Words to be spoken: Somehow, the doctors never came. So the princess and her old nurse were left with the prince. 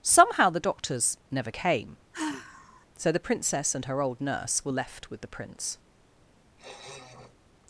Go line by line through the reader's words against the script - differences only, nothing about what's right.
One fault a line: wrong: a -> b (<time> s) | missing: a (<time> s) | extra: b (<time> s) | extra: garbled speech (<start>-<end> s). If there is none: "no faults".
no faults